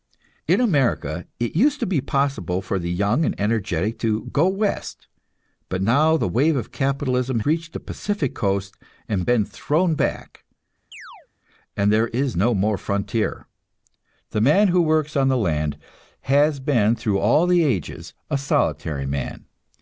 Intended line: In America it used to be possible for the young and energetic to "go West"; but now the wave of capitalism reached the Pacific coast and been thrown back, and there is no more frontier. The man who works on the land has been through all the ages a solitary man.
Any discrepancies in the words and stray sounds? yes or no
yes